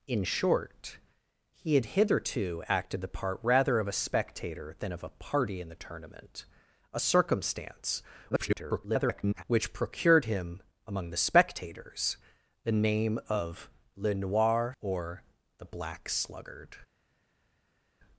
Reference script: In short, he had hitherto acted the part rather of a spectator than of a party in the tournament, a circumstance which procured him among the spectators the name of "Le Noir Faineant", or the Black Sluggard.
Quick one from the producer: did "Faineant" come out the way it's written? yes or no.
no